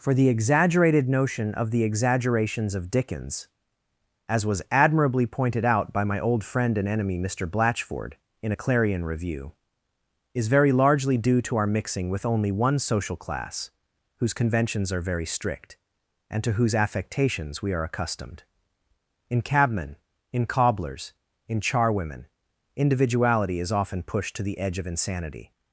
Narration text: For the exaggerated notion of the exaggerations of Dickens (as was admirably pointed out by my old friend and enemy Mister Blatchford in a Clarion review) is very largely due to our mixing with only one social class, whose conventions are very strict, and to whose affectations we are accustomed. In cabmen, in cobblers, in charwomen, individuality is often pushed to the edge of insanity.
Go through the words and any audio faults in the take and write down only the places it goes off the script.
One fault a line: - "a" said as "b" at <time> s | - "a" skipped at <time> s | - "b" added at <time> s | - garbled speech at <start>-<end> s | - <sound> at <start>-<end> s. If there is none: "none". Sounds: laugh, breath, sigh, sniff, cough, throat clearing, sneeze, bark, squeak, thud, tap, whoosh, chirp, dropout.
none